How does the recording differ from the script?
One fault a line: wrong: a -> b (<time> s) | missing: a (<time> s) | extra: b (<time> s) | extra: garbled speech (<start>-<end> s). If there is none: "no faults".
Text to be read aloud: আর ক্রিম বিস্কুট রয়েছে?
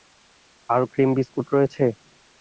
no faults